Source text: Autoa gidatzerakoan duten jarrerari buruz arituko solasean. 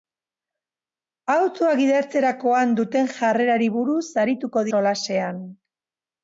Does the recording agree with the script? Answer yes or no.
yes